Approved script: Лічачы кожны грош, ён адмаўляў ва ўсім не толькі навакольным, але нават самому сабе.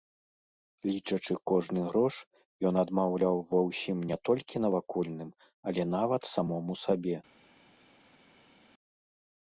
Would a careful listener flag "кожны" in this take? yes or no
no